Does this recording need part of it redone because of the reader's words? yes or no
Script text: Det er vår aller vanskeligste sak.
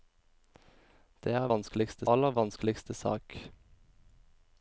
yes